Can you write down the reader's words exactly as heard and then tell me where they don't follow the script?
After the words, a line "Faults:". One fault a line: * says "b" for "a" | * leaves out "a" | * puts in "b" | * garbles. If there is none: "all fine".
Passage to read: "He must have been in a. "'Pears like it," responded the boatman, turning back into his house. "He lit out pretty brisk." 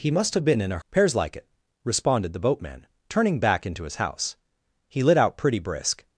"He must have been in a. "'Pears like it," responded the boatman, turning back into his house. "He lit out pretty brisk."
Faults:
all fine